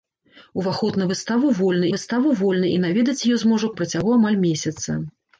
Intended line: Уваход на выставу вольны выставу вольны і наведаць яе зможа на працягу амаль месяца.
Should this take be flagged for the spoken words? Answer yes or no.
no